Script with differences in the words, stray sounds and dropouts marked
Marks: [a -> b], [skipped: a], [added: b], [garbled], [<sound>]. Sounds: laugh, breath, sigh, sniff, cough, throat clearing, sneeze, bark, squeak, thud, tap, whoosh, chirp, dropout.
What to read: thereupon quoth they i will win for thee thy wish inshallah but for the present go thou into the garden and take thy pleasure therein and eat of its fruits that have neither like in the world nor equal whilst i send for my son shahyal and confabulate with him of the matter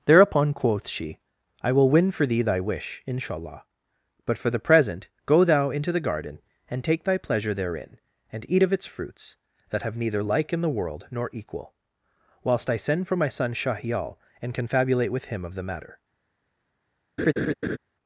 thereupon quoth [they -> she] i will win for thee thy wish inshallah but for the present go thou into the garden and take thy pleasure therein and eat of its fruits that have neither like in the world nor equal whilst i send for my son shahyal and confabulate with him of the matter [laugh]